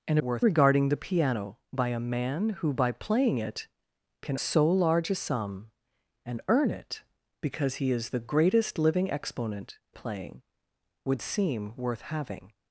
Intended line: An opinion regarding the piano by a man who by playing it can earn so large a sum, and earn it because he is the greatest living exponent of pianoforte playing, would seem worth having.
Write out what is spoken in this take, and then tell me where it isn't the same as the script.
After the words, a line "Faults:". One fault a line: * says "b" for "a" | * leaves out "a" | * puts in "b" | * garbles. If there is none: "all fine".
An worth regarding the piano by a man who by playing it can so large a sum, and earn it because he is the greatest living exponent playing, would seem worth having.
Faults:
* says "worth" for "opinion"
* leaves out "earn"
* leaves out "of pianoforte"